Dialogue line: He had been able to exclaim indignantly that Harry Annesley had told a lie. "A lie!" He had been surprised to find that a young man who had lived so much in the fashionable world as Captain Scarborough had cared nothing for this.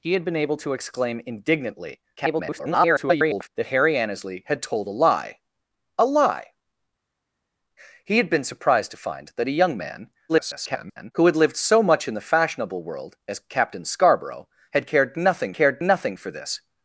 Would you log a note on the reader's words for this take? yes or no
yes